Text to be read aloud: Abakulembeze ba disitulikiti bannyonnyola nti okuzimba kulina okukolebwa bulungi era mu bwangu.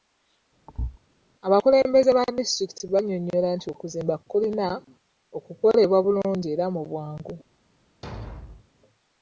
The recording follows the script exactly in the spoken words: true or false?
true